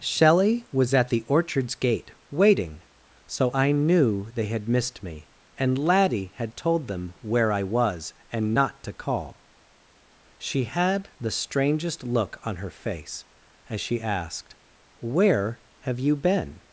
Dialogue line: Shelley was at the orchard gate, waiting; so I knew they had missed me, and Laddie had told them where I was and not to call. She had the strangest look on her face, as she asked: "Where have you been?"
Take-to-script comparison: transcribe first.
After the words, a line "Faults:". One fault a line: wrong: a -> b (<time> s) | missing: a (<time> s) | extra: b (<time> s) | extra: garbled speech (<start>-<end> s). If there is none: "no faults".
Shelley was at the orchards gate, waiting; so I knew they had missed me, and Laddie had told them where I was and not to call. She had the strangest look on her face, as she asked: "Where have you been?"
Faults:
wrong: orchard -> orchards (1.3 s)